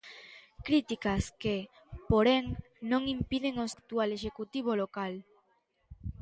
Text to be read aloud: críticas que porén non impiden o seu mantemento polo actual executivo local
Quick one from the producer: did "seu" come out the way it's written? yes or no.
no